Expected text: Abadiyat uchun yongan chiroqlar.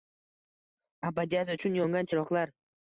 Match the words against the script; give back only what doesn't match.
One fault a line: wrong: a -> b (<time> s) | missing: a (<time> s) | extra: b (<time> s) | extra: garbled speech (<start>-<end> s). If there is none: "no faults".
no faults